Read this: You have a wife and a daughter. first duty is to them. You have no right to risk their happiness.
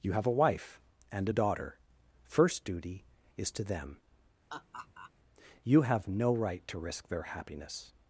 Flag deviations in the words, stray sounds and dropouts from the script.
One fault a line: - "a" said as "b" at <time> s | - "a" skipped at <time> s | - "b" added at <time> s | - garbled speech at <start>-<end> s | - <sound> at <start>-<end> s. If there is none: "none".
- laugh at 4.5-5.1 s